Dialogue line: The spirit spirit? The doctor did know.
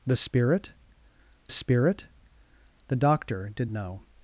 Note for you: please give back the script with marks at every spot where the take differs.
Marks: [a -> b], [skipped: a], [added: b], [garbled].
The spirit spirit? The doctor did know.